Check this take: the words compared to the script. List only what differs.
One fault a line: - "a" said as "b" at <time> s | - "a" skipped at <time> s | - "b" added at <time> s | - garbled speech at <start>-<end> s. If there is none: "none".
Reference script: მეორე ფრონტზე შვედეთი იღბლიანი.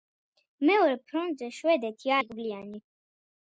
none